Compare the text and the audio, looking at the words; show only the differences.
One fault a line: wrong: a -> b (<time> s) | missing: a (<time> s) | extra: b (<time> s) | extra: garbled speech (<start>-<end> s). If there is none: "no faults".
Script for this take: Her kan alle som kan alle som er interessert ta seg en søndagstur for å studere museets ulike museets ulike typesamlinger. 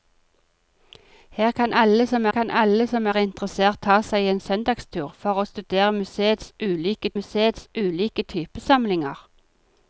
no faults